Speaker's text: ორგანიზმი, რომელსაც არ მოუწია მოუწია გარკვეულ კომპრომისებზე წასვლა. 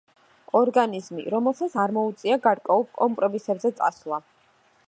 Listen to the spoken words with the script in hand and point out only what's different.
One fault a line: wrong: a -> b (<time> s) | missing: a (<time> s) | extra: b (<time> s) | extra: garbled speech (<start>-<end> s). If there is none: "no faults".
missing: მოუწია (2.4 s)